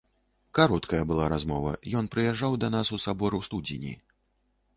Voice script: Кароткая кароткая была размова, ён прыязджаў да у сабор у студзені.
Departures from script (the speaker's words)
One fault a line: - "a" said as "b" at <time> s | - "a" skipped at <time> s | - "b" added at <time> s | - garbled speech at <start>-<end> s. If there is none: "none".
- "кароткая" skipped at 1.0 s
- "нас" added at 2.8 s